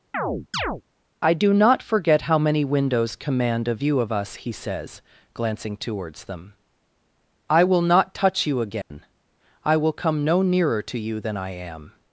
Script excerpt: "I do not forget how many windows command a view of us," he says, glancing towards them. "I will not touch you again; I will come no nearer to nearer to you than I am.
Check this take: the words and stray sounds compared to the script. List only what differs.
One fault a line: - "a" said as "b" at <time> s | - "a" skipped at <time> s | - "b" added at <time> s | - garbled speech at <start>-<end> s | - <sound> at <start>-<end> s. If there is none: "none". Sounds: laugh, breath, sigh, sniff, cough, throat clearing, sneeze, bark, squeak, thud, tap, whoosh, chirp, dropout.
- chirp at 0.1-0.8 s
- dropout at 8.8-8.9 s
- "nearer to" skipped at 11.0 s